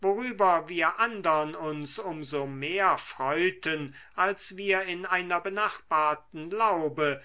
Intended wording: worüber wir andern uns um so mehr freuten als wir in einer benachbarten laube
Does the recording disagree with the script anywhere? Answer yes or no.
no